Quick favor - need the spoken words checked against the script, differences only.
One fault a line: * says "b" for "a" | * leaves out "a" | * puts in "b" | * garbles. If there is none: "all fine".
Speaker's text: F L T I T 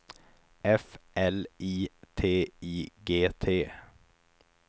* puts in "I"
* puts in "G"